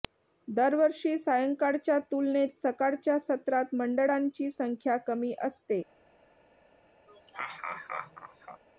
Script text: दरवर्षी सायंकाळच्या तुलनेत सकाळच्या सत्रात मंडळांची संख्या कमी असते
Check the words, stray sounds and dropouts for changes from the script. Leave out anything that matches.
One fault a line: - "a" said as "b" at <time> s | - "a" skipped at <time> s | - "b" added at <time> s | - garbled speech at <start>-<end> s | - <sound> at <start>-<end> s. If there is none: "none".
- laugh at 7.1-8.6 s